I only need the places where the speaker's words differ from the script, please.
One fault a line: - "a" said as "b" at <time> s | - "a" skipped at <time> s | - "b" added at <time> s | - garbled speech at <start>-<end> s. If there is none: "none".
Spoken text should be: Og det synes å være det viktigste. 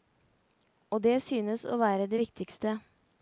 none